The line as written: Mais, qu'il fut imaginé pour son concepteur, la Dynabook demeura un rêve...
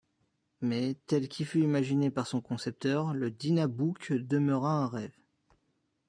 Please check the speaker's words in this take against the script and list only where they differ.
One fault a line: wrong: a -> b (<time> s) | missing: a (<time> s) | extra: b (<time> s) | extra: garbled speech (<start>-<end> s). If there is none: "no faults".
extra: tel (1.1 s)
wrong: pour -> par (2.1 s)
wrong: la -> le (3.1 s)